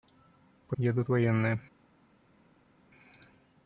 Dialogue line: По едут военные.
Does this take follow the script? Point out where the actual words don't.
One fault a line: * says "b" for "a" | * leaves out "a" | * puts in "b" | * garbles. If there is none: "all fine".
all fine